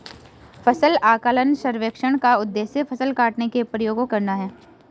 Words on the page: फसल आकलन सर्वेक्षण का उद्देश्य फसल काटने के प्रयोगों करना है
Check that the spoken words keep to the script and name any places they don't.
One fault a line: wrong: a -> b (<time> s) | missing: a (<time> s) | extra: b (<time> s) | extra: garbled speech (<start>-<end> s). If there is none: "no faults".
no faults